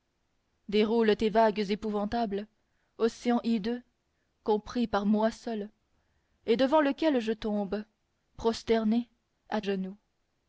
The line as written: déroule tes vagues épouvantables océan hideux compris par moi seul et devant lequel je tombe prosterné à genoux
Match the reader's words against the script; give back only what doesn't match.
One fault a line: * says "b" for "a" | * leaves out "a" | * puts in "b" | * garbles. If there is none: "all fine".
all fine